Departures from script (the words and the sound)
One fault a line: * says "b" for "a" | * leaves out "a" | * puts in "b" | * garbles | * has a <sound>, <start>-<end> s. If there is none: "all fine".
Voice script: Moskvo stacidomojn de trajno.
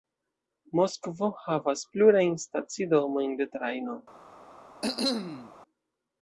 * puts in "havas plurajn"
* has a cough, 4.8-5.5 s